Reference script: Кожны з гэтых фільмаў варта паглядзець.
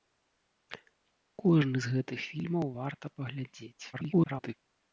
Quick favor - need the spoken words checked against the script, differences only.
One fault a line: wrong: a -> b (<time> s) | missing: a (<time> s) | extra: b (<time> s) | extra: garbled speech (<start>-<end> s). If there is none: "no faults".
extra: garbled speech (3.9-4.5 s)